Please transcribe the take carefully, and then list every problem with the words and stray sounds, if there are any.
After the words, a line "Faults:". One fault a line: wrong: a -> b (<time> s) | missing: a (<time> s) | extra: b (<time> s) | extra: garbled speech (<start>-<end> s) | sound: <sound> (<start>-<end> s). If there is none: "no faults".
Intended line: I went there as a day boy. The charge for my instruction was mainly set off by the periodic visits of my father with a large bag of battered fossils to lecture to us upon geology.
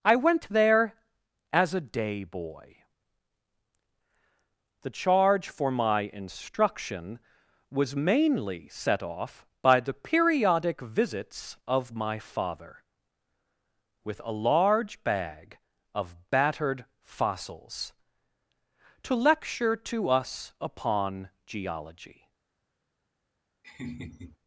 I went there as a day boy. The charge for my instruction was mainly set off by the periodic visits of my father with a large bag of battered fossils to lecture to us upon geology.
Faults:
sound: laugh (23.6-24.4 s)